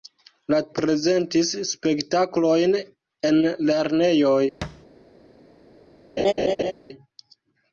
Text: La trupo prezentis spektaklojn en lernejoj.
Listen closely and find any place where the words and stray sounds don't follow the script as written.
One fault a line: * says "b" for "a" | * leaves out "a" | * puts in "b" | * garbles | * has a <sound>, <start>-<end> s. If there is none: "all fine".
* leaves out "trupo"
* has a thud, 4.6-4.9 s
* has a laugh, 6.2-6.7 s